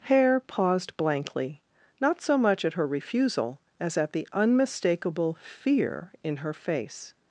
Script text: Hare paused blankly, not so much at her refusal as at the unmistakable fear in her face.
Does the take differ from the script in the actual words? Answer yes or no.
no